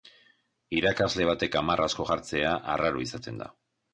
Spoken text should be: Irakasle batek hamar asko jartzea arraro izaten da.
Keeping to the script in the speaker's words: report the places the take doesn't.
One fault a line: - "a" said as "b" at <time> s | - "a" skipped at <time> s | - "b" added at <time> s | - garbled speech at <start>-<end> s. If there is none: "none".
none